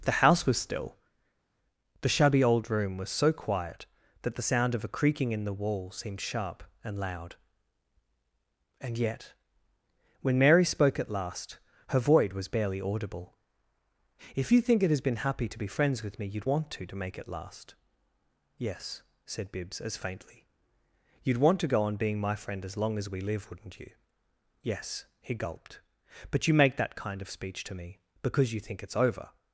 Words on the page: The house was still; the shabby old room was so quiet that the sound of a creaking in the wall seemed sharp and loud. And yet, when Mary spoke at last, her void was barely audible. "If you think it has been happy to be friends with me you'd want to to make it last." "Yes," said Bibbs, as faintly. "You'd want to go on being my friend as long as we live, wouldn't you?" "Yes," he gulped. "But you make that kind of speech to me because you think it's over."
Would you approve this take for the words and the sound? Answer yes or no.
yes